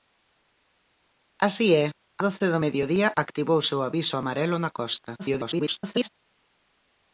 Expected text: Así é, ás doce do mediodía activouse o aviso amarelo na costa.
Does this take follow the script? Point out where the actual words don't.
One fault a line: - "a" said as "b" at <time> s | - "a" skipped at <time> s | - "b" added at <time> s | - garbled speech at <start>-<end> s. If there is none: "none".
- "ás" skipped at 1.9 s
- garbled speech at 5.2-6.1 s